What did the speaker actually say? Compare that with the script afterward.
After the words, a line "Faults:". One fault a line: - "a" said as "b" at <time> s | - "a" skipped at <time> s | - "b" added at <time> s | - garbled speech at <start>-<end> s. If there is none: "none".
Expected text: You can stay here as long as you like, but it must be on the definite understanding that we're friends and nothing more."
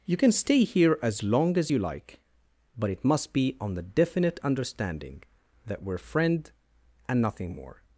You can stay here as long as you like, but it must be on the definite understanding that we're friend and nothing more."
Faults:
- "friends" said as "friend" at 6.0 s